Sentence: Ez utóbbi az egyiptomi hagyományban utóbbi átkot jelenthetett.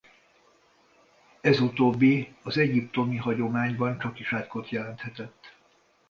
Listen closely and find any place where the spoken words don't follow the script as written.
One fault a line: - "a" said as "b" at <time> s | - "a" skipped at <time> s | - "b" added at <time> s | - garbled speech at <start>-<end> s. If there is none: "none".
- "utóbbi" said as "csakis" at 4.0 s